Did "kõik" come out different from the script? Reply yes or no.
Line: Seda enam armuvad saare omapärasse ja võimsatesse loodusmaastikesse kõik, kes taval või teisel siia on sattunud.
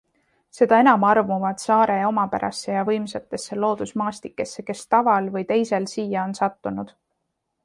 yes